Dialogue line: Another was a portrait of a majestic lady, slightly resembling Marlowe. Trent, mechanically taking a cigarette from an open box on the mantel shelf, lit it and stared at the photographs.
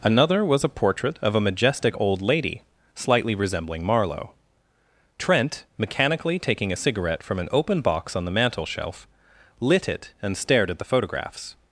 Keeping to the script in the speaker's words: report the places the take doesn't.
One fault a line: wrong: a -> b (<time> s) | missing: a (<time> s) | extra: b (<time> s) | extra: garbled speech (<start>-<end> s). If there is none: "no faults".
extra: old (2.0 s)